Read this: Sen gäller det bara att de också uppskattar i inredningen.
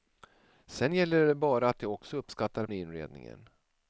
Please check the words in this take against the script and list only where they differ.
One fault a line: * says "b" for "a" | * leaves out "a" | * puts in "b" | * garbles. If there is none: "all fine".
all fine